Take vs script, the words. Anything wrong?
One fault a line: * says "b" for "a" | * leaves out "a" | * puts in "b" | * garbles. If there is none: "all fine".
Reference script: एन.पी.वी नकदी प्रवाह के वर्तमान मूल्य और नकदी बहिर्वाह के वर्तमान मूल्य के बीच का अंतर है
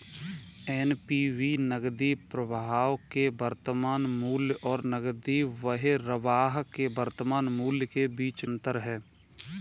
* leaves out "का"